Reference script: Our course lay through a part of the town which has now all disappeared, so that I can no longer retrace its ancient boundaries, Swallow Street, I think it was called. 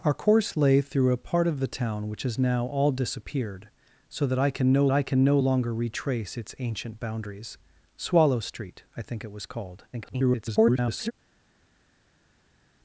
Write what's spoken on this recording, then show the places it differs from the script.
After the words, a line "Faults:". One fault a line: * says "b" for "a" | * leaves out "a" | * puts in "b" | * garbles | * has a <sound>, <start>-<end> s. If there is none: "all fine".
Our course lay through a part of the town which has now all disappeared, so that I can no I can no longer retrace its ancient boundaries, Swallow Street, I think it was called. [garbled]
Faults:
* puts in "I can no"
* garbles